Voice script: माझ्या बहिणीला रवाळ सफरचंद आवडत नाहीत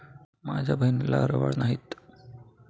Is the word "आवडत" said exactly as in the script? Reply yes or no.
no